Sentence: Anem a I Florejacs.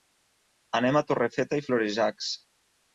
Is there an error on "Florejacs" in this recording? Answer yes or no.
no